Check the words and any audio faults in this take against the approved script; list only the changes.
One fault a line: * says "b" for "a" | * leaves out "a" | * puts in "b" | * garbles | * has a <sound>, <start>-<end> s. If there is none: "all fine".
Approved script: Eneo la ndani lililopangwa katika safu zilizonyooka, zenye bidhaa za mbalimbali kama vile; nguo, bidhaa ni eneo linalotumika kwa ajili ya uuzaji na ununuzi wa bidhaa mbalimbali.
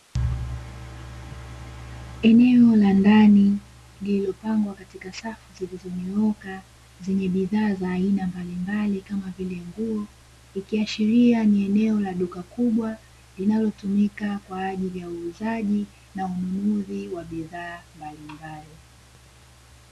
* puts in "aina"
* says "ikiashiria" for "bidhaa"
* puts in "la duka kubwa"